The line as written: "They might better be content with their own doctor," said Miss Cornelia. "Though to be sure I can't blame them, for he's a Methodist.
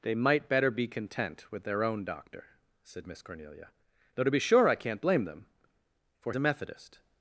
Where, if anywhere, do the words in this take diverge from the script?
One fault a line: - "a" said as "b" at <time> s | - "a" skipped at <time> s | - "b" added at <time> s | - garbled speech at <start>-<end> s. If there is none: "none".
- "he's" skipped at 6.3 s